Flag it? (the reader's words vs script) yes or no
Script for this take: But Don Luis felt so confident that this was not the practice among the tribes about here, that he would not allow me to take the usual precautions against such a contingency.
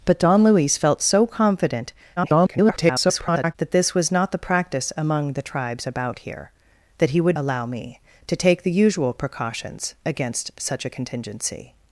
yes